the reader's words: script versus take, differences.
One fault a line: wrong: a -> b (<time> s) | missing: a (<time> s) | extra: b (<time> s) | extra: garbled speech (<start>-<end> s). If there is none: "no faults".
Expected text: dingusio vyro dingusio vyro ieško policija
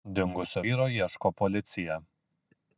missing: dingusio vyro (0.9 s)